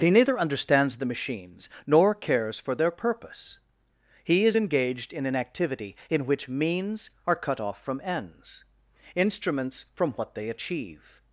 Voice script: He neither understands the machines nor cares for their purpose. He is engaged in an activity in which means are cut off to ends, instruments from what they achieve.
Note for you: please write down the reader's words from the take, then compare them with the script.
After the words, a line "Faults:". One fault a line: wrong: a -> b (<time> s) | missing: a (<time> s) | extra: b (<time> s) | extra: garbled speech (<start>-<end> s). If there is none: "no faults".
He neither understands the machines nor cares for their purpose. He is engaged in an activity in which means are cut off from ends, instruments from what they achieve.
Faults:
wrong: to -> from (7.8 s)